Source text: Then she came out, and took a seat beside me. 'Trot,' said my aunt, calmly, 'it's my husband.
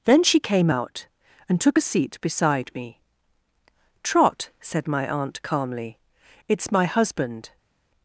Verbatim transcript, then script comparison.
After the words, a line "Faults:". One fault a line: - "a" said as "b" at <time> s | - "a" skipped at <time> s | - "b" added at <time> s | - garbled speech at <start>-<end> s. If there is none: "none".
Then she came out, and took a seat beside me. 'Trot,' said my aunt, calmly, 'it's my husband.
Faults:
none